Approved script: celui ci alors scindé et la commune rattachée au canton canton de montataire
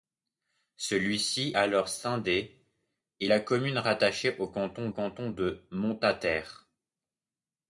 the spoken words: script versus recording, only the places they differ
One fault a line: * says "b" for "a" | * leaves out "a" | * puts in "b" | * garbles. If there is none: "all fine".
all fine